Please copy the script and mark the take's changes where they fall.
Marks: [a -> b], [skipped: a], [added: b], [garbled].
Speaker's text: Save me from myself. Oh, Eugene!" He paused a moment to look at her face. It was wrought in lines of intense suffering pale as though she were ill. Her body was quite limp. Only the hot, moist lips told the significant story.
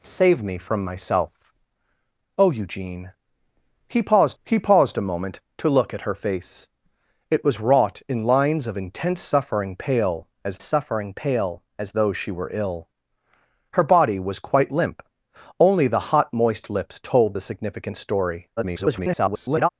Save me from myself. Oh, Eugene!" He paused [added: he paused] a moment to look at her face. It was wrought in lines of intense suffering pale as [added: suffering pale as] though she were ill. Her body was quite limp. Only the hot, moist lips told the significant story. [garbled]